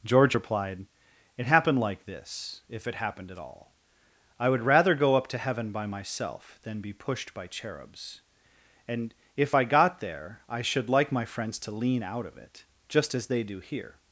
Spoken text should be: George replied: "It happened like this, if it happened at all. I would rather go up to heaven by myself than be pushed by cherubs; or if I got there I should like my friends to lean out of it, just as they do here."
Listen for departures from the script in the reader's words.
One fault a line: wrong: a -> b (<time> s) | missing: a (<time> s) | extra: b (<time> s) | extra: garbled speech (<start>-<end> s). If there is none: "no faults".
wrong: or -> and (8.9 s)